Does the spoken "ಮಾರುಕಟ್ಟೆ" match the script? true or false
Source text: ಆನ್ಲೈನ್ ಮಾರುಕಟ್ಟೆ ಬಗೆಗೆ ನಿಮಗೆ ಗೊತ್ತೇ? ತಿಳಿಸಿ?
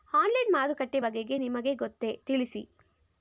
true